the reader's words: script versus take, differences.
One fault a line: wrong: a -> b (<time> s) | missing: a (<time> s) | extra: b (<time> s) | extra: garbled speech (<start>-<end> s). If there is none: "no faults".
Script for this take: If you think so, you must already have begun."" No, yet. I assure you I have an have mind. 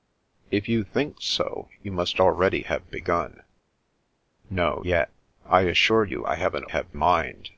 no faults